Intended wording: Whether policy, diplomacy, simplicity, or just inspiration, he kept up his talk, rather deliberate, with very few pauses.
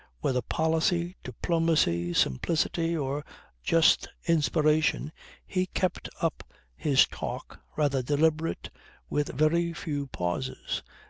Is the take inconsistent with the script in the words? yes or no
no